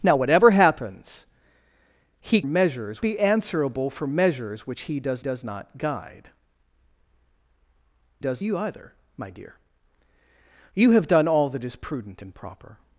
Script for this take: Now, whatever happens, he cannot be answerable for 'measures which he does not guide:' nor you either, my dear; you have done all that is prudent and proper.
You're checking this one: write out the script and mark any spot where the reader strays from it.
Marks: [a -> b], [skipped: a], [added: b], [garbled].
Now, whatever happens, he [cannot -> measures] be answerable for 'measures which he does [added: does] not guide:' [nor -> does] you either, my dear; you have done all that is prudent and proper.